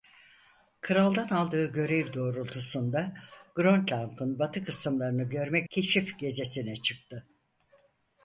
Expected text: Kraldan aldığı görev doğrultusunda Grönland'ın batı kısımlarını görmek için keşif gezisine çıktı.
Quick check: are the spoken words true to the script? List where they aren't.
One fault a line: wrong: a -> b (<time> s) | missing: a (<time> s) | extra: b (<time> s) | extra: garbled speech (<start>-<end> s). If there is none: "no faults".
missing: için (5.7 s)